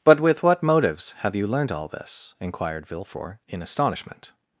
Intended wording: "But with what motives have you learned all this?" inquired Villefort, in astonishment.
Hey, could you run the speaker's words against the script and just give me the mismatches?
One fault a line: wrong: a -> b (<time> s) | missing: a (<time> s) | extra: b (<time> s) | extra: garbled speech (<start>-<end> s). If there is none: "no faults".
no faults